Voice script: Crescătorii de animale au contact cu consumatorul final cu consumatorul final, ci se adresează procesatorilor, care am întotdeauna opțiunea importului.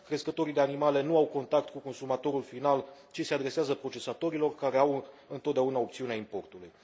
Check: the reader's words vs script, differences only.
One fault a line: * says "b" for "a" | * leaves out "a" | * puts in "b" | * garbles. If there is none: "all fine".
* puts in "nu"
* leaves out "cu consumatorul final"
* says "au" for "am"